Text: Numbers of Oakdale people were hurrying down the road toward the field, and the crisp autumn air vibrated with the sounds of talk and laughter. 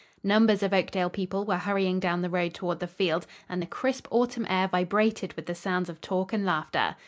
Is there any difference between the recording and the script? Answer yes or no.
no